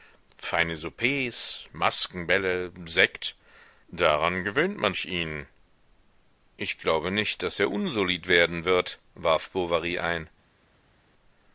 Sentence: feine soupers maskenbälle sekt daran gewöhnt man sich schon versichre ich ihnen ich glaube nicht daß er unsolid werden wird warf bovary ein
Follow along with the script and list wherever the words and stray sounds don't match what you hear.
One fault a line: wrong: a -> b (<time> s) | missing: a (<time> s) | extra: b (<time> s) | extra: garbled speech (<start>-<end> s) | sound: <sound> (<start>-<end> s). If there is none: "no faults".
missing: sich schon versichre (5.0 s)